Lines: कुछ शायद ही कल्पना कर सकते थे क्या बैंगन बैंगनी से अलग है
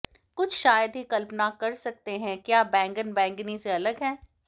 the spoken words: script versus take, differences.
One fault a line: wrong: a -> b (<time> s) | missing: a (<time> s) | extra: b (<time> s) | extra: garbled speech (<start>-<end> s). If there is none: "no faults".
wrong: थे -> हैं (2.2 s)